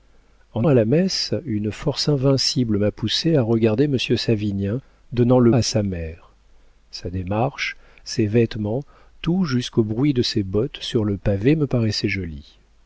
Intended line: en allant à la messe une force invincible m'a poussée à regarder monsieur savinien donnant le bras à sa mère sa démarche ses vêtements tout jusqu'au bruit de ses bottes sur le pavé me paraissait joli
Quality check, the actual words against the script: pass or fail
fail